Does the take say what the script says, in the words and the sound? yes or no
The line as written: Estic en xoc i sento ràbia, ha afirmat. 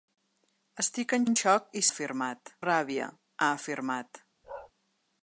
no